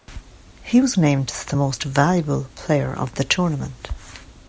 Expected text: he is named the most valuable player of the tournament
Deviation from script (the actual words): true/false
true